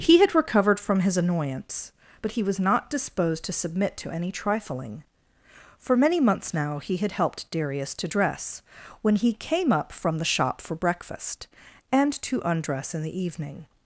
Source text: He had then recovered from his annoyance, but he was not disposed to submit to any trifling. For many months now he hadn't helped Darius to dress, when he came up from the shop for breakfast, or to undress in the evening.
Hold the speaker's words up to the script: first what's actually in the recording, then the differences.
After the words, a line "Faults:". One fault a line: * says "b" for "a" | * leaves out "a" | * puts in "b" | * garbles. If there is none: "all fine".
He had recovered from his annoyance, but he was not disposed to submit to any trifling. For many months now he had helped Darius to dress, when he came up from the shop for breakfast, and to undress in the evening.
Faults:
* leaves out "then"
* says "had" for "hadn't"
* says "and" for "or"